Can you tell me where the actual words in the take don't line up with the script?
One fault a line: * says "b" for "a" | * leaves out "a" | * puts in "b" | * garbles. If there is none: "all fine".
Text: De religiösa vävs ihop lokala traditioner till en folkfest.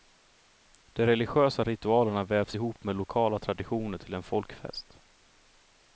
* puts in "ritualerna"
* puts in "med"